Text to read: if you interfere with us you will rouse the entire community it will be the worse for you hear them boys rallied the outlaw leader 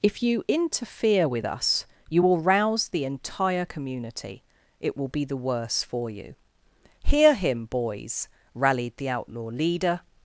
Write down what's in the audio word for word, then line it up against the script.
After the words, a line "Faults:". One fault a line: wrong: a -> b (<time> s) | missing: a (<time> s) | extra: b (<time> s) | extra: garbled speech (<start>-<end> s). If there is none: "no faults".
if you interfere with us you will rouse the entire community it will be the worse for you hear him boys rallied the outlaw leader
Faults:
wrong: them -> him (7.3 s)